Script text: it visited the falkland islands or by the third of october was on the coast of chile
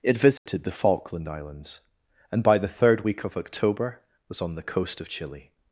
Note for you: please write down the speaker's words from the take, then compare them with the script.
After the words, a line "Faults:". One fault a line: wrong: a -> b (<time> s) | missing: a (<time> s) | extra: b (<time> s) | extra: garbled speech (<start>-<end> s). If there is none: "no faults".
it visited the falkland islands and by the third week of october was on the coast of chile
Faults:
wrong: or -> and (2.3 s)
extra: week (3.0 s)